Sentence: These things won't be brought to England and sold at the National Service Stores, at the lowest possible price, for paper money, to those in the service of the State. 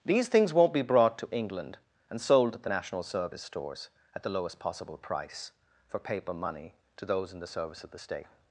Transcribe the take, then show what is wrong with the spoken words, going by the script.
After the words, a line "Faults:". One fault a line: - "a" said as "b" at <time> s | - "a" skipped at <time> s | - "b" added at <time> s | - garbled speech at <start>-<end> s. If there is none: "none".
These things won't be brought to England and sold at the National Service Stores, at the lowest possible price, for paper money, to those in the service of the State.
Faults:
none